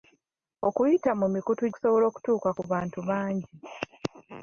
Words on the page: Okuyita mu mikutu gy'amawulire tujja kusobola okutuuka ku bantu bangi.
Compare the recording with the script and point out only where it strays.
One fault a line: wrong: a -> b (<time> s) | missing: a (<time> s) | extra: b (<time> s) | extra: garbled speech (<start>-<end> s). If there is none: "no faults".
missing: gy'amawulire tujja (1.6 s)